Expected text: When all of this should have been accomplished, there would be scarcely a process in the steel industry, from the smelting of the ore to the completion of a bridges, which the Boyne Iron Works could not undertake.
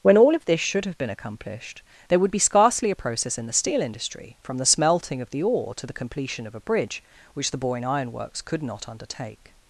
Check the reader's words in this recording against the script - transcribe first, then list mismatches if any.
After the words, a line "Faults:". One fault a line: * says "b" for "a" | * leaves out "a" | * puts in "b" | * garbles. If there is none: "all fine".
When all of this should have been accomplished, there would be scarcely a process in the steel industry, from the smelting of the ore to the completion of a bridge, which the Boyne Iron Works could not undertake.
Faults:
* says "bridge" for "bridges"